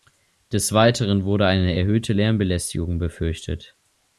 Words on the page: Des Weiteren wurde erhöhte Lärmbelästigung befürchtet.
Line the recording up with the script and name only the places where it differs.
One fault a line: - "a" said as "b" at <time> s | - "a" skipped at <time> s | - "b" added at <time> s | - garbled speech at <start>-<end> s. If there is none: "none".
- "eine" added at 1.4 s